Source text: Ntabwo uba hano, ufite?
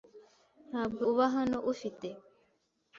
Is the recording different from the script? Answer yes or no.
no